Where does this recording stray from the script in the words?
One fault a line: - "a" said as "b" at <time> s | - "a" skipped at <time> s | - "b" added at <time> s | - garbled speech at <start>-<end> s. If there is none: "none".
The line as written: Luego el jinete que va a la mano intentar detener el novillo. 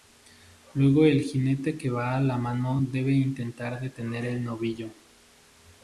- "debe" added at 2.8 s